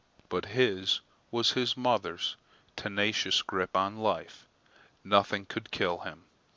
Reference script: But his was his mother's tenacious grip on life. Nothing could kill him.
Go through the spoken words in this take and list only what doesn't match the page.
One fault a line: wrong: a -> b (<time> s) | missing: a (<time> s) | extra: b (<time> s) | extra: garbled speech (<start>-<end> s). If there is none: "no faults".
no faults